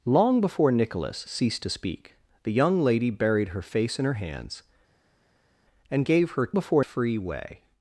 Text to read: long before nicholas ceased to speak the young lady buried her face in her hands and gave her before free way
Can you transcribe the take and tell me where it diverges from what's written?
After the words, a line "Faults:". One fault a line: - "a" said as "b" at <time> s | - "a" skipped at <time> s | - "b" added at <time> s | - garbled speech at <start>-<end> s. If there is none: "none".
long before nicholas ceased to speak the young lady buried her face in her hands and gave her before free way
Faults:
none